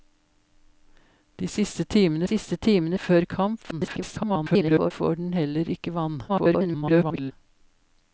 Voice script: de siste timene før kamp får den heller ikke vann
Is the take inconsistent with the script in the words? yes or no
yes